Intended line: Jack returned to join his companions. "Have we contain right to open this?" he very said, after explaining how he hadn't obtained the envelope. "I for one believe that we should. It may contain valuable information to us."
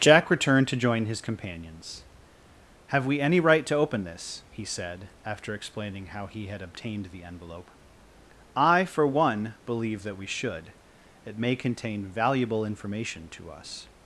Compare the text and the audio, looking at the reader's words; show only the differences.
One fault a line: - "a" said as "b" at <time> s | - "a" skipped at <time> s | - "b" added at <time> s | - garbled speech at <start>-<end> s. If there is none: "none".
- "contain" said as "any" at 3.2 s
- "very" skipped at 4.7 s
- "hadn't" said as "had" at 6.5 s